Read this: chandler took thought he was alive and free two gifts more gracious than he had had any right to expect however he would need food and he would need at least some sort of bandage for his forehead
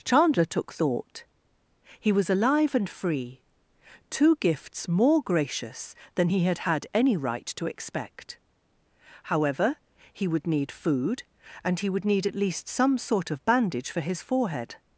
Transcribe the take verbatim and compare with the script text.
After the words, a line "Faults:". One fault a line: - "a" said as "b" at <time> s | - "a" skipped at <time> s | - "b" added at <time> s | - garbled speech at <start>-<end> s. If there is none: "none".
chandler took thought he was alive and free two gifts more gracious than he had had any right to expect however he would need food and he would need at least some sort of bandage for his forehead
Faults:
none